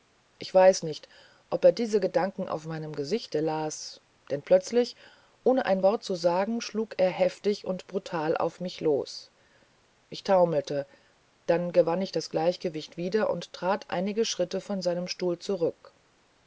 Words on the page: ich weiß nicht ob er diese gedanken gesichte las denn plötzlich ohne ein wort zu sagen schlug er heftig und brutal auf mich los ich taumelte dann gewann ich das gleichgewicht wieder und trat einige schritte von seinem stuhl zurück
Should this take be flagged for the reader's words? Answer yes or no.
yes